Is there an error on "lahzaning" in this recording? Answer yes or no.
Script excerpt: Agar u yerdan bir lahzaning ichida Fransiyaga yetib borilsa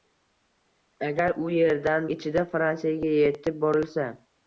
yes